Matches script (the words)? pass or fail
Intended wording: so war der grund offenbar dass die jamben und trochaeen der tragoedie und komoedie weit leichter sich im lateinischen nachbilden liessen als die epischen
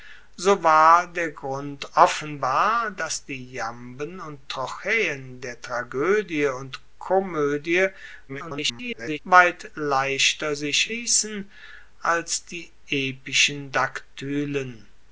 fail